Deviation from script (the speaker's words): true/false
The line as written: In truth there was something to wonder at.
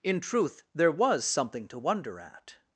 false